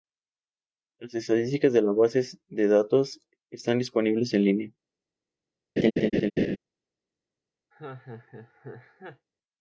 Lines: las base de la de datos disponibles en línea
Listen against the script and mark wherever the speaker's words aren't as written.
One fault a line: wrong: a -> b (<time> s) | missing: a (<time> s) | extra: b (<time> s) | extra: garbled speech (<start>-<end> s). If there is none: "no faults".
wrong: base -> estadísticas (1.1 s)
extra: base (1.9 s)
extra: están (3.5 s)